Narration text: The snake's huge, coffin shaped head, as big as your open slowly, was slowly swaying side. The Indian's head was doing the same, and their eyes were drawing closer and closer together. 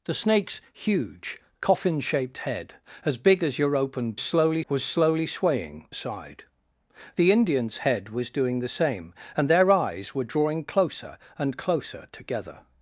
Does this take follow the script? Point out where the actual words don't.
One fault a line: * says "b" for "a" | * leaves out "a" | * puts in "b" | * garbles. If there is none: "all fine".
all fine